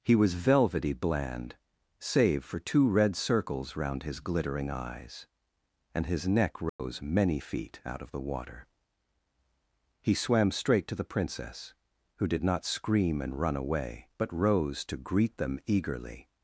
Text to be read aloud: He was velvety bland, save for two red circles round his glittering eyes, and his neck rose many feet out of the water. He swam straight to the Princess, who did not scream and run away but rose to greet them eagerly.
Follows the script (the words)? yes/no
yes